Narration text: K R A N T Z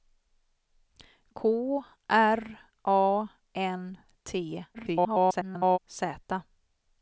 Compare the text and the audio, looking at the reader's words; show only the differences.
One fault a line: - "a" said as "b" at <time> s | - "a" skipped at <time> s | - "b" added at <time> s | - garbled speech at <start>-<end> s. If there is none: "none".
- garbled speech at 4.7-5.8 s